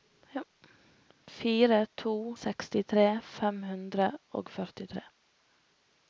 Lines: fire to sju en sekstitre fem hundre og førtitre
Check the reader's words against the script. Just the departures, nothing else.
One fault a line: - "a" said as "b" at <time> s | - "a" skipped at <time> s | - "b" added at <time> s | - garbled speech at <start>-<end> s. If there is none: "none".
- "sju en" skipped at 2.1 s